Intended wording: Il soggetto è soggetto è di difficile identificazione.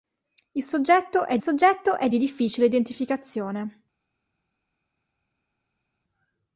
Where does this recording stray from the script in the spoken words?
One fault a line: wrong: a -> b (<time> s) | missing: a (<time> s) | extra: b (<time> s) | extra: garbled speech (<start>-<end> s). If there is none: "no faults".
no faults